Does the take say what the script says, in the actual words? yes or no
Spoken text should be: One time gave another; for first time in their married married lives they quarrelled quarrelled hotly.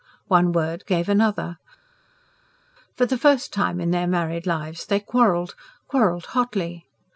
no